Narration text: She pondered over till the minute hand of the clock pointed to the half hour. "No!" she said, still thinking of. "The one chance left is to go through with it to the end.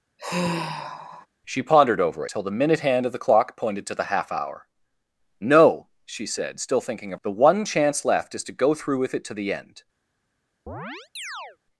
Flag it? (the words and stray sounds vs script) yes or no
yes